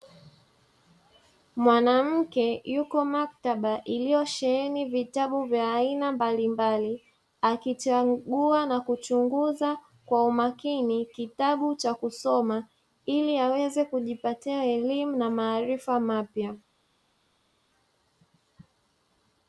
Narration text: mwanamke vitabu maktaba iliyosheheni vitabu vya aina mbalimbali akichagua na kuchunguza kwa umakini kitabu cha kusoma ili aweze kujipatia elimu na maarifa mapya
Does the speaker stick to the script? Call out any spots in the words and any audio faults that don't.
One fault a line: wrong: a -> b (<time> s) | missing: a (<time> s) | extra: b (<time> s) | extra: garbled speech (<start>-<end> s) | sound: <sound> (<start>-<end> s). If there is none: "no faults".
wrong: vitabu -> yuko (2.7 s)